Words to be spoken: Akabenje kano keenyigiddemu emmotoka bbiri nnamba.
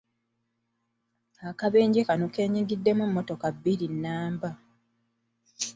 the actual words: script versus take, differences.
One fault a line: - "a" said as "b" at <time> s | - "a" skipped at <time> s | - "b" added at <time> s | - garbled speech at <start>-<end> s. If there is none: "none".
none